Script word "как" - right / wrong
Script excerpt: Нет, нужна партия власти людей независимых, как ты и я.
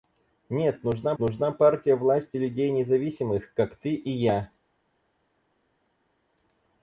right